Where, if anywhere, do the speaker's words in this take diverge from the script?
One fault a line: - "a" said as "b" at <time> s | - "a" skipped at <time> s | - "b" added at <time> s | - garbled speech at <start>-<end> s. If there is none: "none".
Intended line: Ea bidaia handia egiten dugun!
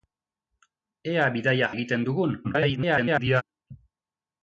- "handia" skipped at 1.7 s
- garbled speech at 2.4-3.4 s